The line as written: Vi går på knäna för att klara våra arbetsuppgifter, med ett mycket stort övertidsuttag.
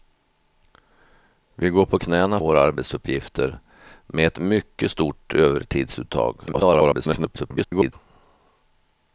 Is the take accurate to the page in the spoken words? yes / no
no